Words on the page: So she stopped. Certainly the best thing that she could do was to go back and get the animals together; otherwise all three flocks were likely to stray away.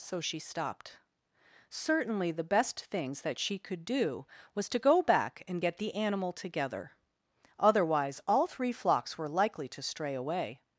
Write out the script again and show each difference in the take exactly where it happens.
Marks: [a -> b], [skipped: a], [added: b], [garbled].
So she stopped. Certainly the best [thing -> things] that she could do was to go back and get the [animals -> animal] together; otherwise all three flocks were likely to stray away.